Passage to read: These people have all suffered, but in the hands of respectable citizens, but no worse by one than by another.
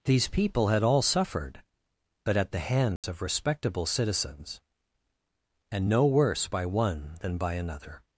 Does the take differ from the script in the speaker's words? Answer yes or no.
yes